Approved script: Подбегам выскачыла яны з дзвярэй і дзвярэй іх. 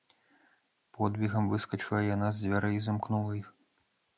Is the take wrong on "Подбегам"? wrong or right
right